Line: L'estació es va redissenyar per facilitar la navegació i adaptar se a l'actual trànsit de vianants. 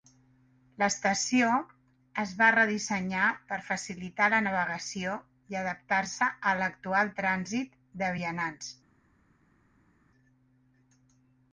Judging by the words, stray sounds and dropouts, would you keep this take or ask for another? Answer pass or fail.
pass